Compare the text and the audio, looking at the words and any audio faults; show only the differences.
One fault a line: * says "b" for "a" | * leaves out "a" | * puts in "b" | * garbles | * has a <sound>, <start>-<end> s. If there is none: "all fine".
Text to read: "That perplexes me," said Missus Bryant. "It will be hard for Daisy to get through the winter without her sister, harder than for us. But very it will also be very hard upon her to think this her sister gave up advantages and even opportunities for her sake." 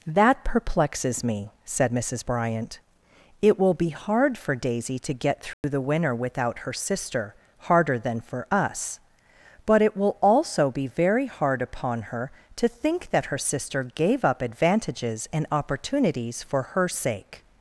* has a dropout, 5.5-5.6 s
* leaves out "very"
* says "that" for "this"
* leaves out "even"